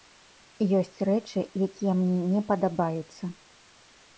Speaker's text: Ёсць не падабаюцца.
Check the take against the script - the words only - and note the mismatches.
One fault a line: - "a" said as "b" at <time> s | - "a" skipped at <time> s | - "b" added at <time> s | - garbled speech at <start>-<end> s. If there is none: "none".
- "рэчы якія мне" added at 1.1 s